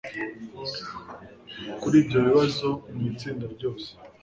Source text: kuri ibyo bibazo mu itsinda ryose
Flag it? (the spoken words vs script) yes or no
no